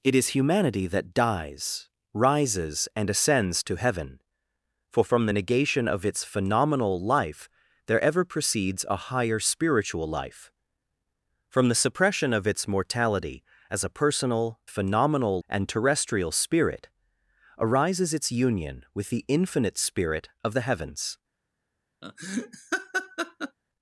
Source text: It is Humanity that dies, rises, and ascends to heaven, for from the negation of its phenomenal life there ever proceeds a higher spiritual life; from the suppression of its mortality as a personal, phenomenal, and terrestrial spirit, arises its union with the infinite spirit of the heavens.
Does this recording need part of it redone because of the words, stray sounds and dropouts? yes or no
yes